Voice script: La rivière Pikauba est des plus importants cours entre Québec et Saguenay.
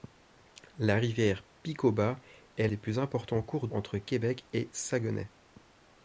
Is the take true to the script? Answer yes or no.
yes